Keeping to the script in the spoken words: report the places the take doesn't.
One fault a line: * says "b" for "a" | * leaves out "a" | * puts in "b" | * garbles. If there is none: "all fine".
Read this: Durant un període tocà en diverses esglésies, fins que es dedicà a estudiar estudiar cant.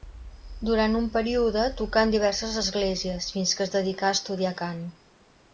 * leaves out "estudiar"